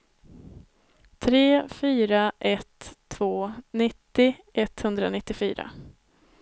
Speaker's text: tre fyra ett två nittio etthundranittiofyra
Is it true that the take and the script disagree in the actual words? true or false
false